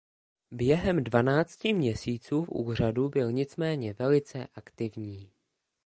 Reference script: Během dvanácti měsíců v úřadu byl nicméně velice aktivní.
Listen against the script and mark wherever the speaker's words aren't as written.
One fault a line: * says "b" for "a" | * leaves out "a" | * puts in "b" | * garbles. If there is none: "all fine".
all fine